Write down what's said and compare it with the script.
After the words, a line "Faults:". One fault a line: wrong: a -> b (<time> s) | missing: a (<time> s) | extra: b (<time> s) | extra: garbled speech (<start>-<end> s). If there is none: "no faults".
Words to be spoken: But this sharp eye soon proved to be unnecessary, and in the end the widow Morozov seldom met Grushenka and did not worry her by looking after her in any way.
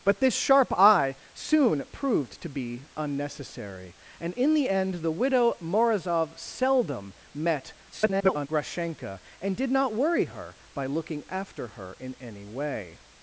But this sharp eye soon proved to be unnecessary, and in the end the widow Morozov seldom met [garbled] Grushenka and did not worry her by looking after her in any way.
Faults:
extra: garbled speech (7.9-8.5 s)